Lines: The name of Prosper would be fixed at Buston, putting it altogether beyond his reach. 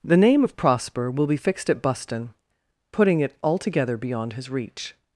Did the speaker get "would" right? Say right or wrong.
wrong